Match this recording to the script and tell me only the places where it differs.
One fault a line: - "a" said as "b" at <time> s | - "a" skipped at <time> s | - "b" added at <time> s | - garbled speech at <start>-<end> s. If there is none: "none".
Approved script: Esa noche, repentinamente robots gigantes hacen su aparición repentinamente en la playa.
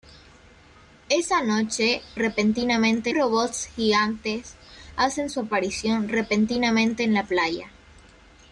none